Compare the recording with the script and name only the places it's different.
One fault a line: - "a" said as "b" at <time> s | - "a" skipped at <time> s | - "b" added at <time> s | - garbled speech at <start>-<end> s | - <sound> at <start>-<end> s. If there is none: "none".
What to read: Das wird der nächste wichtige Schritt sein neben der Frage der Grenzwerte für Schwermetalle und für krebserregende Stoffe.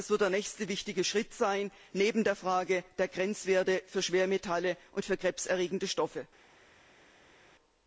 none